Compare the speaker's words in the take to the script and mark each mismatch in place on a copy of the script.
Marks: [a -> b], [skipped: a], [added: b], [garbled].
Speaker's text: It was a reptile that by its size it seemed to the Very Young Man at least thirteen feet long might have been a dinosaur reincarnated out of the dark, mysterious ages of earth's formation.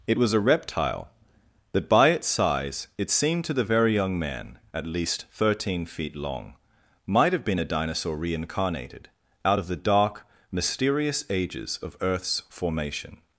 It was a reptile that by its size it seemed to the Very Young Man at least thirteen feet long might have been a dinosaur reincarnated out of the dark, mysterious ages of earth's formation.